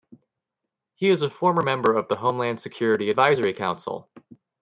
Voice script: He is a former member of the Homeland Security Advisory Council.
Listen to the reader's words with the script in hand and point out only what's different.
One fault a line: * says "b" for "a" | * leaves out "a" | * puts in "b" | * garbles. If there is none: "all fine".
all fine